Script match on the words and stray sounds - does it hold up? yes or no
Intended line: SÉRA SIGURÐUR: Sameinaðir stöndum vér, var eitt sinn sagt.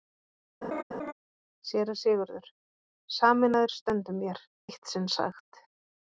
no